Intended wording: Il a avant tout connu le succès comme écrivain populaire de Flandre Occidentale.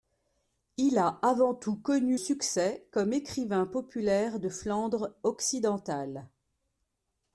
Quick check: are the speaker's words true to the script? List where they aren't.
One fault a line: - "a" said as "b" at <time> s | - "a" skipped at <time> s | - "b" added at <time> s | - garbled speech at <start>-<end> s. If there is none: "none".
- "le" skipped at 2.2 s